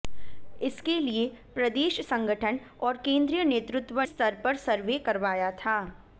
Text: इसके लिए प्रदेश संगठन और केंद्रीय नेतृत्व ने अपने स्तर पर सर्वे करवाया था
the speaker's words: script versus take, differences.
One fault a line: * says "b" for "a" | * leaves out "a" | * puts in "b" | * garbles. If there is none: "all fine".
* leaves out "ने अपने"